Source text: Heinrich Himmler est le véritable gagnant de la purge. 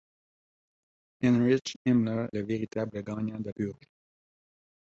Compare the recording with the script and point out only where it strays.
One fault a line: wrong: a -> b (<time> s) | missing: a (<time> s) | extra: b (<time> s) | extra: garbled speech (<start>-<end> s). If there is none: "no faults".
missing: est (2.3 s)
missing: la (3.5 s)